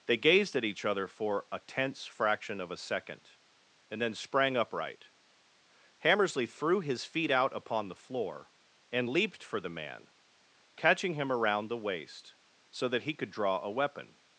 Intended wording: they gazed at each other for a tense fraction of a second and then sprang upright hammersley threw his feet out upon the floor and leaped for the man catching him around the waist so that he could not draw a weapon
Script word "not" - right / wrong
wrong